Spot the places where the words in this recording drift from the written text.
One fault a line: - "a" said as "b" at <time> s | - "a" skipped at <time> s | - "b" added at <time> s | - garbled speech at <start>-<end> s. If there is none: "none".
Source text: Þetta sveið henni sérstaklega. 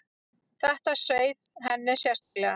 none